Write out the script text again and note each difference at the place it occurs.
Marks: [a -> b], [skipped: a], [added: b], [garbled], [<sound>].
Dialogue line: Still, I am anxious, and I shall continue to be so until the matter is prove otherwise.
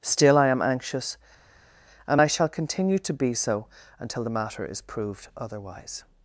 Still, I am anxious, and I shall continue to be so until the matter is [prove -> proved] otherwise.